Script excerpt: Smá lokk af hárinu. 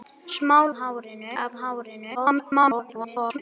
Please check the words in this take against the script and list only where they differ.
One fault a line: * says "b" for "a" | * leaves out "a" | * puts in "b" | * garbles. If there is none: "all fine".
* says "hárinu" for "lokk"
* garbles